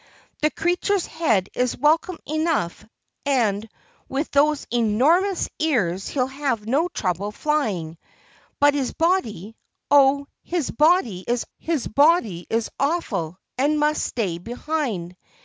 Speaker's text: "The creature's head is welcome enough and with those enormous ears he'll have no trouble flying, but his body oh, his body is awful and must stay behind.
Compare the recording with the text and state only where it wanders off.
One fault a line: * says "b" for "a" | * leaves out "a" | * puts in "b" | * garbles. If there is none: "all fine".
* puts in "his body is"